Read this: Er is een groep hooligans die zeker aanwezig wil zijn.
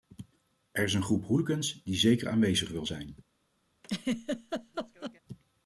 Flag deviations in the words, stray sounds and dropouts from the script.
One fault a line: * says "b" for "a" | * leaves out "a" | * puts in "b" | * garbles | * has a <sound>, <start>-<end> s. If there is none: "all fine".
* has a laugh, 3.8-5.2 s